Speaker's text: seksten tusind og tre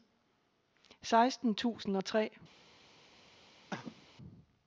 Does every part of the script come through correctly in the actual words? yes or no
yes